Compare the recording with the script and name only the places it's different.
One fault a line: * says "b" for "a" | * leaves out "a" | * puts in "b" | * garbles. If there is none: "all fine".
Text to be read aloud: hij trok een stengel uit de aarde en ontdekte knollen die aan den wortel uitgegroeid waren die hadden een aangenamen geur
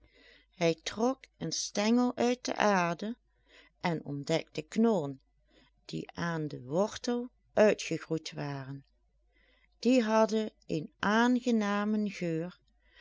all fine